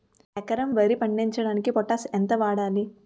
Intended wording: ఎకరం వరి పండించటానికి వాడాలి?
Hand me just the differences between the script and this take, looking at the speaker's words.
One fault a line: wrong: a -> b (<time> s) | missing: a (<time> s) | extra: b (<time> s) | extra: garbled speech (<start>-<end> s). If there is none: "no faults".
extra: పొటాష్ ఎంత (1.7 s)